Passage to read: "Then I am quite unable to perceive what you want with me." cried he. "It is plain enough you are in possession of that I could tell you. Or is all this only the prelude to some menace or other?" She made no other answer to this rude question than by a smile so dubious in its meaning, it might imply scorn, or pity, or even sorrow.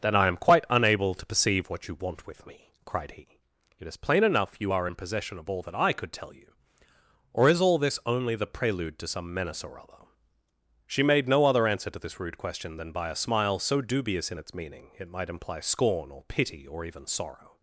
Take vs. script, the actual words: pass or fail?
fail